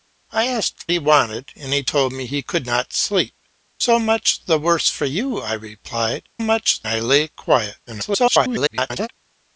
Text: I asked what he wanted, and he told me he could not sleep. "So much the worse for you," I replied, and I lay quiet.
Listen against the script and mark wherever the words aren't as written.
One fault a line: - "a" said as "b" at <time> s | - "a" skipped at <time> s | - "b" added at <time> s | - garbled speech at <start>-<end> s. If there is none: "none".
- "what" skipped at 0.8 s
- "and" said as "much" at 6.4 s
- garbled speech at 7.9-9.1 s